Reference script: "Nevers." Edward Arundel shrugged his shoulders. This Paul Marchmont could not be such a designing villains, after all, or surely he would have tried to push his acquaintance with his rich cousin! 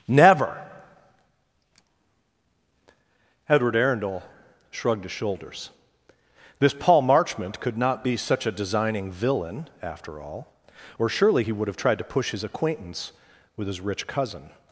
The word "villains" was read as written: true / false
false